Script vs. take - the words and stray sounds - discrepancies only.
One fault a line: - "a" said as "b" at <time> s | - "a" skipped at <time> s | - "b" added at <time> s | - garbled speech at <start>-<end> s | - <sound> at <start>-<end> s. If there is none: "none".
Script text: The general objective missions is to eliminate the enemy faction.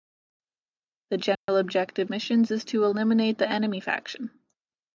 - dropout at 1.4-1.5 s